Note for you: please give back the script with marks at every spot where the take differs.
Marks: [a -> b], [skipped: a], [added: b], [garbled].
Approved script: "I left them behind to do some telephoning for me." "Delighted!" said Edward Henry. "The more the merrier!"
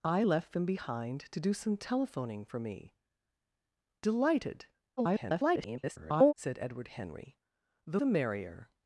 "I left them behind to do some telephoning for me." "Delighted!" [garbled] said Edward Henry. "The [skipped: more] the merrier!"